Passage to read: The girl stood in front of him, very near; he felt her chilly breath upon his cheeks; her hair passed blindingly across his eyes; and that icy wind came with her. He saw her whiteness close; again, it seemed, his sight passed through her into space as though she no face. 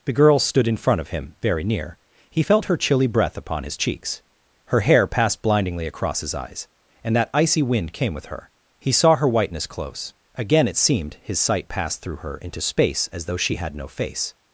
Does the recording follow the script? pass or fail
fail